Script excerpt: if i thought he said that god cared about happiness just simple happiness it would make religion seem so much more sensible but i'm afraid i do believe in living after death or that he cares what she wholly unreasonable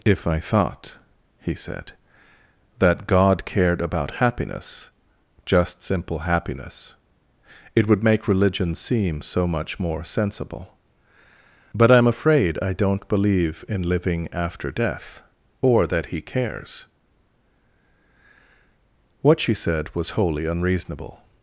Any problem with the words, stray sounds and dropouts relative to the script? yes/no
yes